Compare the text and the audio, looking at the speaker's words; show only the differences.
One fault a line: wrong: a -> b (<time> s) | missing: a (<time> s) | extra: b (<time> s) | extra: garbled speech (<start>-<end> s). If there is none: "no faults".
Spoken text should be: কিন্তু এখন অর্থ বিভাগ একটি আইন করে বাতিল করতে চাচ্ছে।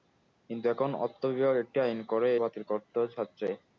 no faults